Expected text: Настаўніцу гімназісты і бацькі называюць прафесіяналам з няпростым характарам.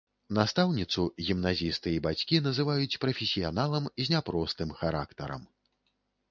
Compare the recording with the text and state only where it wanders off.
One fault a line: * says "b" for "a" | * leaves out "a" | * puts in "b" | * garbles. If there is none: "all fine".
all fine